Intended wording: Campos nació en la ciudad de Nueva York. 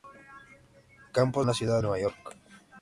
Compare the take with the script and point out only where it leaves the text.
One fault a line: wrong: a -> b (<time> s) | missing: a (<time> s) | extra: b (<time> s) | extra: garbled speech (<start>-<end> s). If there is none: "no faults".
missing: nació (1.4 s)
missing: de (1.8 s)